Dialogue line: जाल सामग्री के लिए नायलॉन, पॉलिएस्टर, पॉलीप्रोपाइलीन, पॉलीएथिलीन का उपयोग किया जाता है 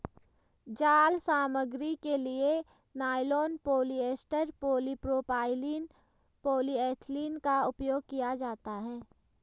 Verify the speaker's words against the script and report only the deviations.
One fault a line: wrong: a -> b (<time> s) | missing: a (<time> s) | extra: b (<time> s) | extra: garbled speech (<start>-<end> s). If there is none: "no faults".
no faults